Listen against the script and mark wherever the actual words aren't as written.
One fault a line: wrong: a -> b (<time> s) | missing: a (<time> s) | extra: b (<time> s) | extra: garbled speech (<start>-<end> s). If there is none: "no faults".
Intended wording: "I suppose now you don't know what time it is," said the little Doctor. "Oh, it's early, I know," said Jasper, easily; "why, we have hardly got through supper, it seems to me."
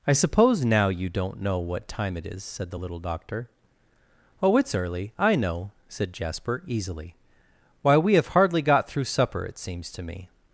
no faults